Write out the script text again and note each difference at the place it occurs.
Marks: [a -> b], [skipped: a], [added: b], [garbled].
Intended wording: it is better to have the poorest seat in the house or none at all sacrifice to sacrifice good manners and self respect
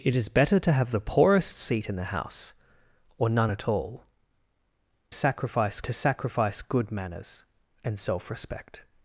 it is better to have the poorest seat in the house or none at all sacrifice to sacrifice good manners and self respect